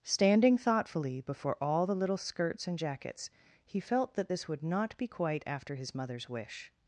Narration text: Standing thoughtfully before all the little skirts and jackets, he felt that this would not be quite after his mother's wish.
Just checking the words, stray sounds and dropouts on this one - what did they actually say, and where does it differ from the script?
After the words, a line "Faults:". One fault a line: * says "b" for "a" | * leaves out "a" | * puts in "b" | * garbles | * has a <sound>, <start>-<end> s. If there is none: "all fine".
Standing thoughtfully before all the little skirts and jackets, he felt that this would not be quite after his mother's wish.
Faults:
all fine